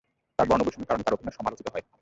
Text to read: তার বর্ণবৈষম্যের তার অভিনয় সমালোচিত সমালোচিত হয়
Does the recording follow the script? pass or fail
fail